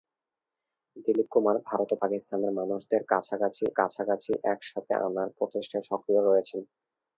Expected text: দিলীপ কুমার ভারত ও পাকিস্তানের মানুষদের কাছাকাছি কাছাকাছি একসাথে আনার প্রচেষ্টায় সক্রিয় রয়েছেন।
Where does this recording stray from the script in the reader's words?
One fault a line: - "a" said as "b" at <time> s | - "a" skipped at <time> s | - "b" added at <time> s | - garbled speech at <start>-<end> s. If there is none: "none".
none